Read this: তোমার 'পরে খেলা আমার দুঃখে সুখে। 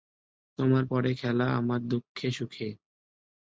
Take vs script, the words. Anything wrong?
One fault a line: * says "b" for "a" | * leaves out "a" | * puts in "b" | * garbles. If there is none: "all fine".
all fine